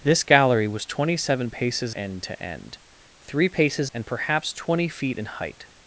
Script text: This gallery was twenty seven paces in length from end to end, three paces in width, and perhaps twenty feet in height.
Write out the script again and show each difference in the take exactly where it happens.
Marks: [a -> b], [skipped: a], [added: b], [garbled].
This gallery was twenty seven paces [skipped: in length from] end to end, three paces [skipped: in width,] and perhaps twenty feet in height.